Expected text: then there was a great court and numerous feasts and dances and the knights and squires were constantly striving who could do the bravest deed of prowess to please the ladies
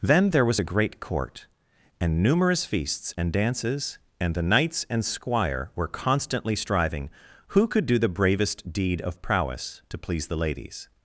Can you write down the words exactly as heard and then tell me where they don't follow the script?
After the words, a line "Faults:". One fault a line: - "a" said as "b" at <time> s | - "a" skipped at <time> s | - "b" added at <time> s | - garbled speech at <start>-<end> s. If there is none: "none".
then there was a great court and numerous feasts and dances and the knights and squire were constantly striving who could do the bravest deed of prowess to please the ladies
Faults:
- "squires" said as "squire" at 5.0 s